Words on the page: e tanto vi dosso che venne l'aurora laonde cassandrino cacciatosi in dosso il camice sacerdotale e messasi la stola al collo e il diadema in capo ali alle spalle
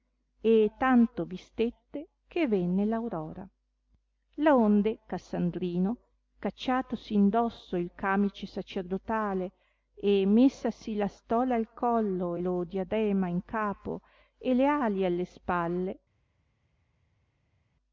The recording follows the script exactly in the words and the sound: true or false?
false